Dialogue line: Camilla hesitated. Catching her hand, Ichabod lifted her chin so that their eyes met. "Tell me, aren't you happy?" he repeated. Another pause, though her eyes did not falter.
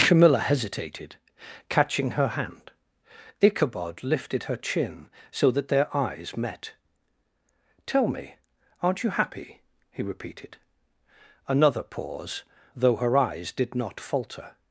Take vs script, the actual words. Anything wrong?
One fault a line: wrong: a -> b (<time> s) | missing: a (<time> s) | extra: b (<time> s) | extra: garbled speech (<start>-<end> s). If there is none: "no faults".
no faults